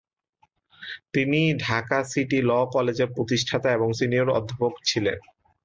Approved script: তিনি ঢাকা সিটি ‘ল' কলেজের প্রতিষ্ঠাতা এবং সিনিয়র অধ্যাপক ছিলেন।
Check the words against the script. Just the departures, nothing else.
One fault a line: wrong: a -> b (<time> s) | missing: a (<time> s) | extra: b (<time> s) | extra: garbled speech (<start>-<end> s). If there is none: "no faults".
no faults